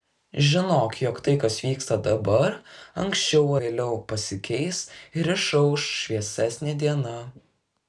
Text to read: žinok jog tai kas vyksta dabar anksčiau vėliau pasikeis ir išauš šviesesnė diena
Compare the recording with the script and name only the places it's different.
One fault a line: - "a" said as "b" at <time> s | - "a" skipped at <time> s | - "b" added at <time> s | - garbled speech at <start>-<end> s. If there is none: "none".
none